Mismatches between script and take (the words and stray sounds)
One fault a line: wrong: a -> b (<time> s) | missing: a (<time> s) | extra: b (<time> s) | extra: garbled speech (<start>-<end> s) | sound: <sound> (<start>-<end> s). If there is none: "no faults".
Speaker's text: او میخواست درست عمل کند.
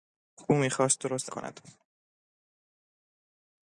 missing: عمل (1.3 s)